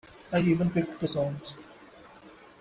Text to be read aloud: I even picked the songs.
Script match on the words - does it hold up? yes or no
yes